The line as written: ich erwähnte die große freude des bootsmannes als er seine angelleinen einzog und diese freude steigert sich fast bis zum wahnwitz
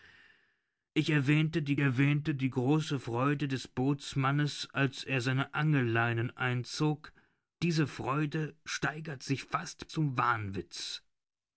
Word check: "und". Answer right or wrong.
wrong